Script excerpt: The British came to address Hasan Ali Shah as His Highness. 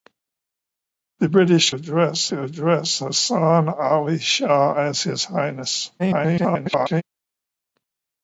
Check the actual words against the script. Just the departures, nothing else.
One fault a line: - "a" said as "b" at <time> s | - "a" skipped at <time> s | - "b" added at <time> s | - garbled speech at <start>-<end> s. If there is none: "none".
- "came" said as "address" at 1.7 s
- garbled speech at 6.0-7.0 s